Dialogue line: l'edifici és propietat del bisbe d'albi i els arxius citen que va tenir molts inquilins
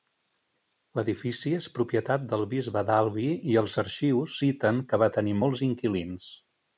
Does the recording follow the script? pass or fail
pass